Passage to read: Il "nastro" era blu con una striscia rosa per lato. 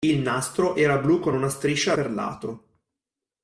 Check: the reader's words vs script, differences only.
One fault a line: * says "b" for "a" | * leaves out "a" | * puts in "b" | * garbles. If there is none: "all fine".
* leaves out "rosa"